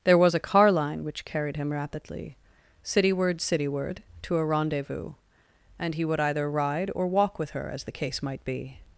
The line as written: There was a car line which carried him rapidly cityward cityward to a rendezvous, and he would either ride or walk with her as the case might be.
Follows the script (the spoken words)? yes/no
yes